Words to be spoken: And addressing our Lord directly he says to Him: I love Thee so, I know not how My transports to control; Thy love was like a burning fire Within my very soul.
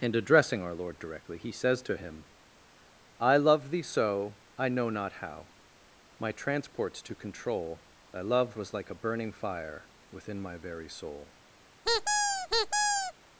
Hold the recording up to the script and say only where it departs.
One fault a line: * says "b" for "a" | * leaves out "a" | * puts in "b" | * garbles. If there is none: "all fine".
all fine